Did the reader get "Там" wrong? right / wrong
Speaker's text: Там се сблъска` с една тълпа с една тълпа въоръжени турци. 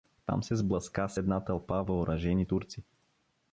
right